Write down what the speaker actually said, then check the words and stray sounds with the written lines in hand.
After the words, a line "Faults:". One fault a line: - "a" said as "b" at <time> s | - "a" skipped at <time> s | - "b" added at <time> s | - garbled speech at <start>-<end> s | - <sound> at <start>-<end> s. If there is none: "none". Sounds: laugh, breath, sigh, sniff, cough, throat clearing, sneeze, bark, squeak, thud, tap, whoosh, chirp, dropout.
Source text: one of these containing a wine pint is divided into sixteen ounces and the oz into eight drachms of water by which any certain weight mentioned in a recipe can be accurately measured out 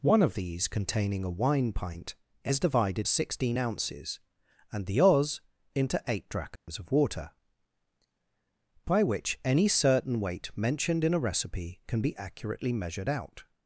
one of these containing a wine pint is divided sixteen ounces and the oz into eight drachms of water by which any certain weight mentioned in a recipe can be accurately measured out
Faults:
- "into" skipped at 3.1 s
- dropout at 6.6-6.7 s